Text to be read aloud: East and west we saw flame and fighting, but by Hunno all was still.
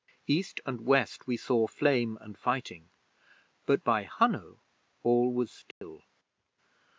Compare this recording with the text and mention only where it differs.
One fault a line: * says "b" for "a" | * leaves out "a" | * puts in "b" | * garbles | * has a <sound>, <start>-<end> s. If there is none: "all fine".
* has a dropout, 5.7-5.8 s